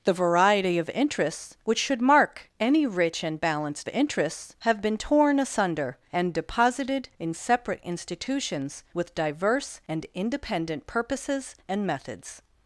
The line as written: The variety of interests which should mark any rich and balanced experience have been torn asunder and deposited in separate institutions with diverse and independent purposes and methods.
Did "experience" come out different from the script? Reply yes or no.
yes